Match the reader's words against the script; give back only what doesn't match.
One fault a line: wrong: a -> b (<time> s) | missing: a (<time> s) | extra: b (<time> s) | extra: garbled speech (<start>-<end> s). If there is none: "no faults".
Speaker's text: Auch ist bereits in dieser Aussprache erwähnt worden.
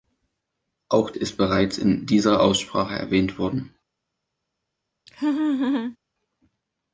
no faults